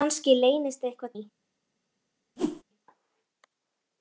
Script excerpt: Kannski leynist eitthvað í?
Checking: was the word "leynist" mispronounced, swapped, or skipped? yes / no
no